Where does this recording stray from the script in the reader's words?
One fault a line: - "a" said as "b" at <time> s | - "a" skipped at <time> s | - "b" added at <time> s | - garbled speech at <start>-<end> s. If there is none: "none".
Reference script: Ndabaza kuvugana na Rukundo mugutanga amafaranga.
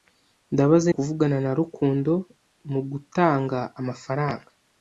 none